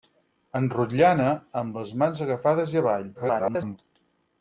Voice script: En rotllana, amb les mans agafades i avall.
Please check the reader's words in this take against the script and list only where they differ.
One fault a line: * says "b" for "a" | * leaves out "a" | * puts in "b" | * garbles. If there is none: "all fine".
* garbles